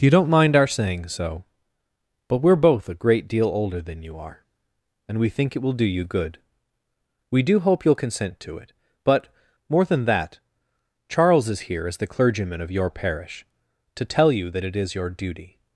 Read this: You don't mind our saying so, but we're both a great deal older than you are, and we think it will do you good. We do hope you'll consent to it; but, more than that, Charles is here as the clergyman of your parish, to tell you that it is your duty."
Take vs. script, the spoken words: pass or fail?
pass